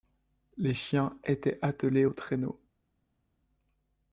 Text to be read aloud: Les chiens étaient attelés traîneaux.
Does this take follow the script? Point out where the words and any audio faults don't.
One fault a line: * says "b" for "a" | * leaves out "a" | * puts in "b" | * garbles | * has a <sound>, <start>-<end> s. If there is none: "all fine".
* puts in "aux"